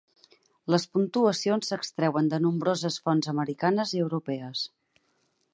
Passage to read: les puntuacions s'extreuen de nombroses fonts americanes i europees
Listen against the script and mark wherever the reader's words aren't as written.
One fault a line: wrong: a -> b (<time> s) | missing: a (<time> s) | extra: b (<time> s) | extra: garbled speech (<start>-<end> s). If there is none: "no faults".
no faults